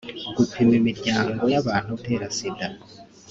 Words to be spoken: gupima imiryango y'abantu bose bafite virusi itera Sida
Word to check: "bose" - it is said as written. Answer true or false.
false